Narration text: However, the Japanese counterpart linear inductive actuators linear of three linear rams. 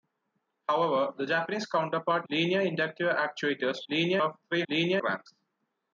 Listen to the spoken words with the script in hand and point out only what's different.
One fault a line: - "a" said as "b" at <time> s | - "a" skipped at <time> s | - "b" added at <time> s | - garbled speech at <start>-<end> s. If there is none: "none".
none